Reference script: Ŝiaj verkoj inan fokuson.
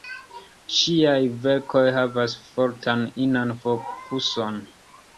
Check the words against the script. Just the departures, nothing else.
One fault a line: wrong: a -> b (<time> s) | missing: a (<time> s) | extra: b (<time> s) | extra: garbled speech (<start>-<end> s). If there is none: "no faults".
extra: havas fortan (2.0 s)